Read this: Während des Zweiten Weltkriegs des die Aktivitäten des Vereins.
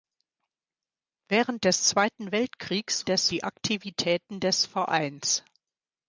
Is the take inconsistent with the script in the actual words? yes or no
no